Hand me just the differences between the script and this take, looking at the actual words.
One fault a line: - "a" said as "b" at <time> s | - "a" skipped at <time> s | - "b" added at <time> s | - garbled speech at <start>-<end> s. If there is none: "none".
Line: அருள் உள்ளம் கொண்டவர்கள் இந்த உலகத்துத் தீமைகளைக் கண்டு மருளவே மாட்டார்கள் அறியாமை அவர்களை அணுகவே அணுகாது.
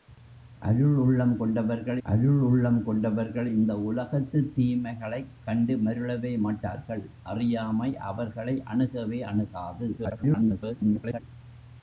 - "அருள் உள்ளம் கொண்டவர்கள்" added at 2.0 s
- garbled speech at 10.0-11.2 s